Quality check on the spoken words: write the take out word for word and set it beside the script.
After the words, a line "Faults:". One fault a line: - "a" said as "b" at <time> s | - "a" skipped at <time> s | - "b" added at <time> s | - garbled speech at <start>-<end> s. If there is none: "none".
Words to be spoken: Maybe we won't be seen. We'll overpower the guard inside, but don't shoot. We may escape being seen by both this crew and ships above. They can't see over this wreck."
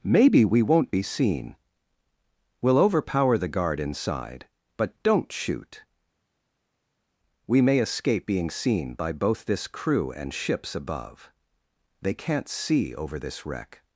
Maybe we won't be seen. We'll overpower the guard inside, but don't shoot. We may escape being seen by both this crew and ships above. They can't see over this wreck."
Faults:
none